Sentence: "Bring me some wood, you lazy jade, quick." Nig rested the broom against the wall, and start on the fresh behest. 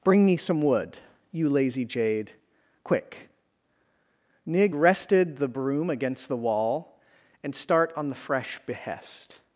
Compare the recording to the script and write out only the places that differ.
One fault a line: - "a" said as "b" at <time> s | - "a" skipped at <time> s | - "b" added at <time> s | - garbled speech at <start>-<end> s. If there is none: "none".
none